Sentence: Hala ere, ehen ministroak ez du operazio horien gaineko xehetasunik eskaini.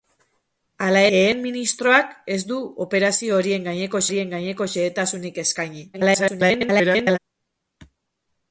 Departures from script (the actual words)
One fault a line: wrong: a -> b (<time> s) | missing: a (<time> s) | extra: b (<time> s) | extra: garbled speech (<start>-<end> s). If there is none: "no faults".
missing: ere (1.0 s)
extra: horien gaineko (4.1 s)
extra: garbled speech (5.9-7.2 s)